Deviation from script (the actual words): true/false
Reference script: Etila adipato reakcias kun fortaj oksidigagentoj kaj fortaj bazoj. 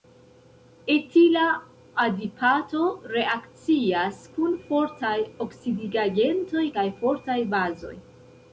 false